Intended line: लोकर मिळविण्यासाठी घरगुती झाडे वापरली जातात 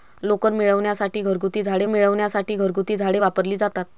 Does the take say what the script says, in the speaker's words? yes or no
no